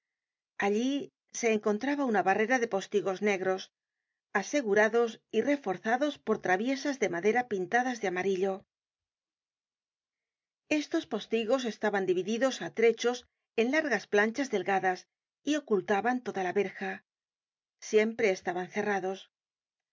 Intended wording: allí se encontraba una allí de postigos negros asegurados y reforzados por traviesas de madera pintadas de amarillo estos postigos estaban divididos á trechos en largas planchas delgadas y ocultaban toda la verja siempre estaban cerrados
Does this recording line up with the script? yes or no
no